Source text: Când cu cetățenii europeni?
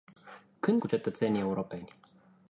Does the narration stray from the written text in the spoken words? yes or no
no